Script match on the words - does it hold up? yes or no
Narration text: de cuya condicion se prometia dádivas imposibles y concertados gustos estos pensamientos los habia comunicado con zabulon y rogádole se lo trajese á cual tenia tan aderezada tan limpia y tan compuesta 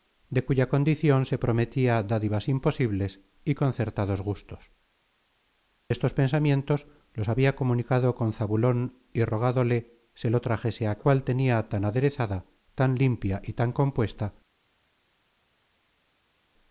yes